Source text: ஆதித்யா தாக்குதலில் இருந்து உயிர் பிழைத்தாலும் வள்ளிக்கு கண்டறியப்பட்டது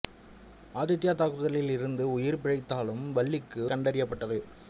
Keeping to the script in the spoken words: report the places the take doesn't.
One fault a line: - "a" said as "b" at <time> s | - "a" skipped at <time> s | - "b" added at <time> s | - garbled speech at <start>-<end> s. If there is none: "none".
none